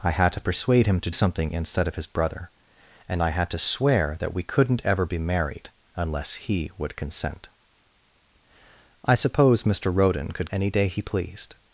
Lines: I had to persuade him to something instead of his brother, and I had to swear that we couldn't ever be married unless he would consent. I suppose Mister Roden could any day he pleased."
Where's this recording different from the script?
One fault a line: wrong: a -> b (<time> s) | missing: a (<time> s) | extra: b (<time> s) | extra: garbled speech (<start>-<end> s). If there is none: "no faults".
no faults